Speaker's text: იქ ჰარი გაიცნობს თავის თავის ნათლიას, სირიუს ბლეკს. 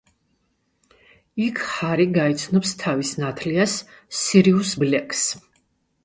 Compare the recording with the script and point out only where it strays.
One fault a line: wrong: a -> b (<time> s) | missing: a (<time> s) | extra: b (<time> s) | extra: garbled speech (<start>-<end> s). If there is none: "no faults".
missing: თავის (3.1 s)